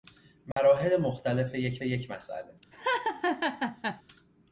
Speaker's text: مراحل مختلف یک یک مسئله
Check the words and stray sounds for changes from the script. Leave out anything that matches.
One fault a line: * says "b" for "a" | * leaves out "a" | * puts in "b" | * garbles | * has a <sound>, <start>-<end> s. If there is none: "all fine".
* has a dropout, 0.5-0.6 s
* has a laugh, 2.7-4.0 s